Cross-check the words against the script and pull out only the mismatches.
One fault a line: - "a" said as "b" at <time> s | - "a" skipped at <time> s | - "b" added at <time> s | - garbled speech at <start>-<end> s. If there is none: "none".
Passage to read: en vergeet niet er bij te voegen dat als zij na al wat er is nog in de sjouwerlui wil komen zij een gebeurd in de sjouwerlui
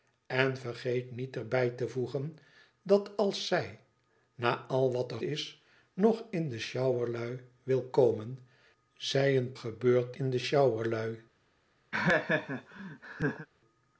none